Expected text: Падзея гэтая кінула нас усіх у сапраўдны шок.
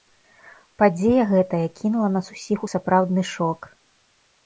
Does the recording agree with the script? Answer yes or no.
yes